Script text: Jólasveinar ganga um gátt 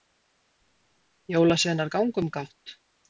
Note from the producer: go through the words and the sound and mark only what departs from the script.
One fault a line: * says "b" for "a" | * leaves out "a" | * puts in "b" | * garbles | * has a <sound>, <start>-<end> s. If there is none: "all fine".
all fine